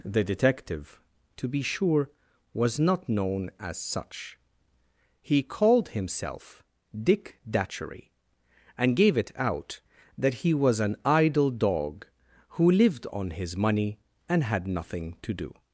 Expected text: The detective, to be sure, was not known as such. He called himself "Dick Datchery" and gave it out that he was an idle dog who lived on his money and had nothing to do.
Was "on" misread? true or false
false